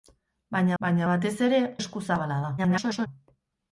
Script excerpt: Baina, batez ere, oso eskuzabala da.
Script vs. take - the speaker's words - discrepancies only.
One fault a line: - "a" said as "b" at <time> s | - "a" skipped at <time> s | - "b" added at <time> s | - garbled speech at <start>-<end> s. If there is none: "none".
- "baina" added at 0.8 s
- "oso" skipped at 1.6 s
- garbled speech at 2.6-3.1 s